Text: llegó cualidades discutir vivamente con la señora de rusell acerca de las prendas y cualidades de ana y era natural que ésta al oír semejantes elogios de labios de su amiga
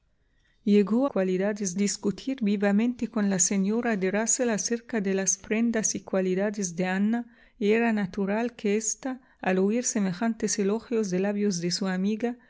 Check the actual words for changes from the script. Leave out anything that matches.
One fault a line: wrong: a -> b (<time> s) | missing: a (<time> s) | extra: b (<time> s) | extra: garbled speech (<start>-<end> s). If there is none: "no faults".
no faults